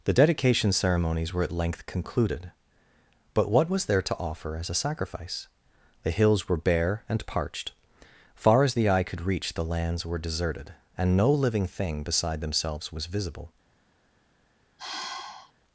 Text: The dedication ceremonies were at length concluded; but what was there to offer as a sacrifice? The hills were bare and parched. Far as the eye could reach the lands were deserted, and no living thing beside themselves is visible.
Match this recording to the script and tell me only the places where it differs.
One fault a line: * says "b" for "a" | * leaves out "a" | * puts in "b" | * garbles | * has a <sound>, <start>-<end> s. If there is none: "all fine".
* says "was" for "is"
* has a sigh, 14.8-15.5 s